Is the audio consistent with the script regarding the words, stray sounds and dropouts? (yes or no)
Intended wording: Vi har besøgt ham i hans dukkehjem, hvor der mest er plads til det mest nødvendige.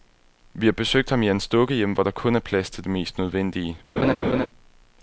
no